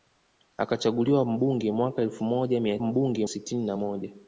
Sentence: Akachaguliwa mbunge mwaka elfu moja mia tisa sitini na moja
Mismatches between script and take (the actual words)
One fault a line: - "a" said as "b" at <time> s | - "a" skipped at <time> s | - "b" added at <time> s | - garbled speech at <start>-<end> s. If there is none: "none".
- "tisa" said as "mbunge" at 2.8 s